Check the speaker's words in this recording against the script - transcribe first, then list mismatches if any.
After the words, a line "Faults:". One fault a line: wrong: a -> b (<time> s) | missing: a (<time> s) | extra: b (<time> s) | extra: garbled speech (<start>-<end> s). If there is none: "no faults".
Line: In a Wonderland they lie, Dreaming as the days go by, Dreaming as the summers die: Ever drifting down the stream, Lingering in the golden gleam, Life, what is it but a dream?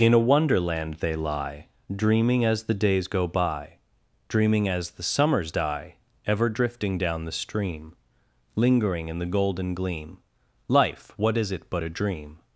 In a Wonderland they lie, Dreaming as the days go by, Dreaming as the summers die: Ever drifting down the stream, Lingering in the golden gleam, Life, what is it but a dream?
Faults:
no faults